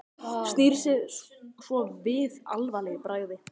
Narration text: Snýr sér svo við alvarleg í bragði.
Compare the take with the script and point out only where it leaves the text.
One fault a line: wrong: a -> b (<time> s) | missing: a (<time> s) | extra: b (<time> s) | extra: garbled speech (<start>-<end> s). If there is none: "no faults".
no faults